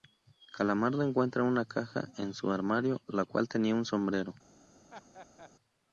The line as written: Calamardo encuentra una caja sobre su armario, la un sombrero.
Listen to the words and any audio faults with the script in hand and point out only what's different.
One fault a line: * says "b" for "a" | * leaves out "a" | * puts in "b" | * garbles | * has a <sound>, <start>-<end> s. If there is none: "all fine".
* says "en" for "sobre"
* puts in "cual tenía"
* has a laugh, 4.9-5.5 s